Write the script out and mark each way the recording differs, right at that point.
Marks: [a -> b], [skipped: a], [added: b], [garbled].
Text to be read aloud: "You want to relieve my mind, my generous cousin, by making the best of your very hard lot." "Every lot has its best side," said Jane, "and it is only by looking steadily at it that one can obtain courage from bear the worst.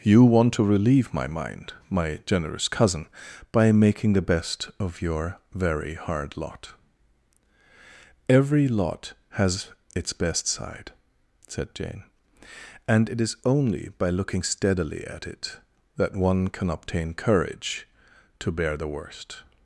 "You want to relieve my mind, my generous cousin, by making the best of your very hard lot." "Every lot has its best side," said Jane, "and it is only by looking steadily at it that one can obtain courage [from -> to] bear the worst.